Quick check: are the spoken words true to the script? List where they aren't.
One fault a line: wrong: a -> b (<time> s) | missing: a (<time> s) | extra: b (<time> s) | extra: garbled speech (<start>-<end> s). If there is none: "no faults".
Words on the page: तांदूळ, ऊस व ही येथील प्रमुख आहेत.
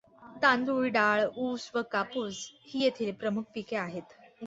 extra: डाळ (0.9 s)
extra: कापूस (1.9 s)
extra: पिके (3.5 s)